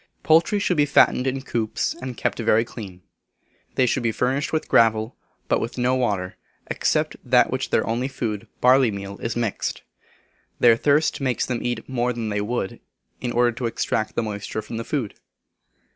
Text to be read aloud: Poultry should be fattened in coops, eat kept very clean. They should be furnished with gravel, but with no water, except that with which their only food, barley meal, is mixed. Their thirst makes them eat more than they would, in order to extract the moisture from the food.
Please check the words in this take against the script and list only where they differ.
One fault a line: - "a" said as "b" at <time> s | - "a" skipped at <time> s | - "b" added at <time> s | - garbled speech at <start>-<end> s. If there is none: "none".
- "eat" said as "and" at 2.0 s